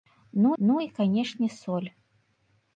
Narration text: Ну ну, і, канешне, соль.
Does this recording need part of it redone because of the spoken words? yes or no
no